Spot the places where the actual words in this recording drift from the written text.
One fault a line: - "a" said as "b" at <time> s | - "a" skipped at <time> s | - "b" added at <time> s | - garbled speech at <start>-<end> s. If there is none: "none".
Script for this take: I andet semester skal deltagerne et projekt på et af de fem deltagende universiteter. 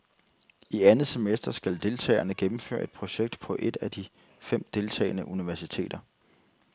- "gennemføre" added at 2.3 s